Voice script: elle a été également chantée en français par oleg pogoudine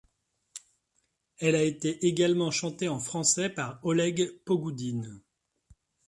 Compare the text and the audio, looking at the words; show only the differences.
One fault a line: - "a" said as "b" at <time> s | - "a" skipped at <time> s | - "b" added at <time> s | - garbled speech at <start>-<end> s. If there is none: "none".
none